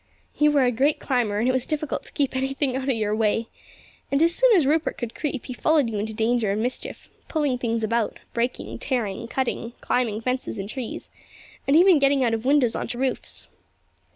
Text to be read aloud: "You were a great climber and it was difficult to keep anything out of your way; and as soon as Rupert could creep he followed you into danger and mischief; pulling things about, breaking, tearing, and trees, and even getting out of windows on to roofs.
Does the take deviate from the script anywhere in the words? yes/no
yes